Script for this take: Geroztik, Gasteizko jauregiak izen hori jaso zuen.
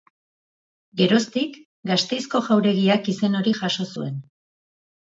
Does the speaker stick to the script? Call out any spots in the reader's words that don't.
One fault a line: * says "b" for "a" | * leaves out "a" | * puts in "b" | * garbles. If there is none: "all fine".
all fine